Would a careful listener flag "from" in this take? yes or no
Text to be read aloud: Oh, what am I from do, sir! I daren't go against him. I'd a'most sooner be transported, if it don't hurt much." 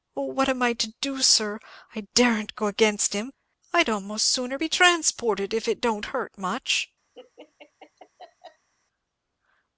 yes